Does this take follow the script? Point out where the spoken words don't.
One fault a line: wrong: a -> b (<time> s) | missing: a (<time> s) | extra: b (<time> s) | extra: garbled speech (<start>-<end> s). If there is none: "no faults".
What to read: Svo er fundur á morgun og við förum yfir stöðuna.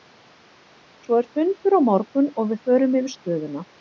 no faults